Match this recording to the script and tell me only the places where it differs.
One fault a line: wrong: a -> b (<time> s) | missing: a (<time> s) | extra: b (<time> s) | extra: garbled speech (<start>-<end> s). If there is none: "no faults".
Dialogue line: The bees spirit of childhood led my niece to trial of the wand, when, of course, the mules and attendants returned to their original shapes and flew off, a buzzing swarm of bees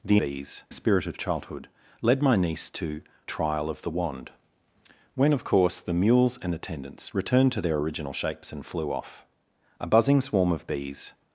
no faults